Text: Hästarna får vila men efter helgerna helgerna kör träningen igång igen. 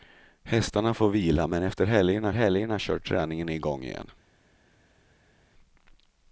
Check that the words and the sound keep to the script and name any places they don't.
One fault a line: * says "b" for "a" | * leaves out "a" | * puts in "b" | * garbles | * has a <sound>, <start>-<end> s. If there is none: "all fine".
all fine